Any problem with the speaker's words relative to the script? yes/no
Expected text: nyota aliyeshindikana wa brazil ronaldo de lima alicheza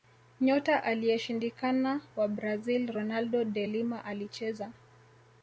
no